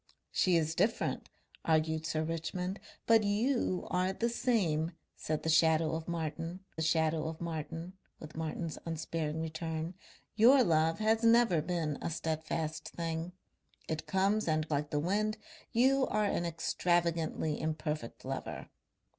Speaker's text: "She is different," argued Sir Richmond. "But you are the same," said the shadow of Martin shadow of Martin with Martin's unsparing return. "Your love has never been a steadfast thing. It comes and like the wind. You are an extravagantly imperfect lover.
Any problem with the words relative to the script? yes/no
no